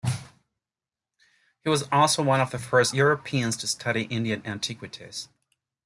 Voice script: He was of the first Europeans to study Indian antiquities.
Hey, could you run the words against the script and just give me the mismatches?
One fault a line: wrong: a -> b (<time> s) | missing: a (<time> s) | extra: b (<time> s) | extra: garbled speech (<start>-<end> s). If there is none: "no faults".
extra: also one (1.9 s)